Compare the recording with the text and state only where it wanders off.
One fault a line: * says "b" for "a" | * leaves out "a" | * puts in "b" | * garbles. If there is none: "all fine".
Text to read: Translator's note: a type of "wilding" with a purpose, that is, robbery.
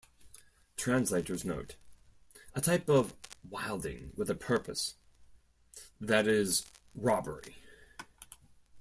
all fine